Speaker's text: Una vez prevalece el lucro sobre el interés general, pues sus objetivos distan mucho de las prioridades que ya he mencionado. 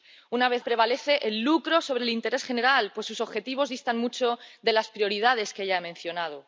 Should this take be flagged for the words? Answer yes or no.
no